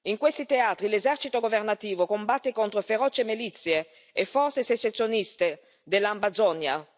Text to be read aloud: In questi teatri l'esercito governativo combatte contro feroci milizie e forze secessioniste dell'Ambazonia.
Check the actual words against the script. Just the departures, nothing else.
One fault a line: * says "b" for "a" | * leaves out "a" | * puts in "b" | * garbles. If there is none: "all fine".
all fine